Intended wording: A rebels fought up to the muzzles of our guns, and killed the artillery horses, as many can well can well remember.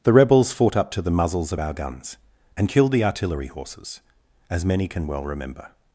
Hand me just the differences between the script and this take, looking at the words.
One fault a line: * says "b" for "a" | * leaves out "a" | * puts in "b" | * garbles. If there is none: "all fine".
* says "The" for "A"
* leaves out "can well"